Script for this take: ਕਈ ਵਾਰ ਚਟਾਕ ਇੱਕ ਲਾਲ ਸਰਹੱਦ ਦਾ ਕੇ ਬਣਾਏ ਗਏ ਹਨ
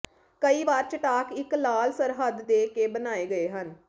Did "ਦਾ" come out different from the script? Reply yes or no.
yes